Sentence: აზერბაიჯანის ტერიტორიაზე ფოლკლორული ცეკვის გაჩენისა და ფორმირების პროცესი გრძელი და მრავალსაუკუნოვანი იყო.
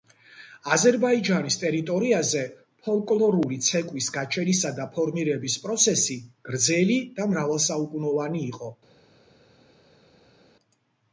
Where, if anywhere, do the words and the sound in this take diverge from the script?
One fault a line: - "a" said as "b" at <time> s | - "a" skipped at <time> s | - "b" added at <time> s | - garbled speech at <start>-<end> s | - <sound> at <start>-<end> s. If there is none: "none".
none